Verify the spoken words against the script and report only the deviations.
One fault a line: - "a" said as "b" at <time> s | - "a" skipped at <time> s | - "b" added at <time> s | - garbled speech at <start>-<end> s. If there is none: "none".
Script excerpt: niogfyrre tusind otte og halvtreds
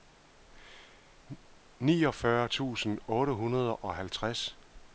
- "hundrede" added at 3.3 s